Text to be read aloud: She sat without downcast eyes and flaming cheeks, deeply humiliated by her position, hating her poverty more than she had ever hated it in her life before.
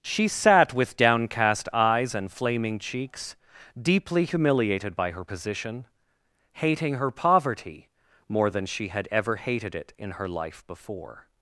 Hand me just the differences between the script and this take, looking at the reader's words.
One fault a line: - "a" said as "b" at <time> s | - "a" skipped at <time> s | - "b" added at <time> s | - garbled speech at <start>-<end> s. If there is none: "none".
- "without" said as "with" at 0.7 s